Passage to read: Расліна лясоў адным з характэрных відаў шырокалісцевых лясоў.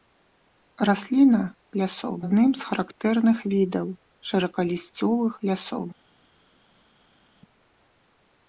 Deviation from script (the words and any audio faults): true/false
false